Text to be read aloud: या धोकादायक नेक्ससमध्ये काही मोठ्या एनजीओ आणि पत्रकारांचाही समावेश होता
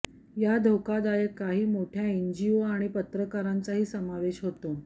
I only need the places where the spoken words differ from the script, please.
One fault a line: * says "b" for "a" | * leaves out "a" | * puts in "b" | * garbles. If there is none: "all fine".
* leaves out "नेक्ससमध्ये"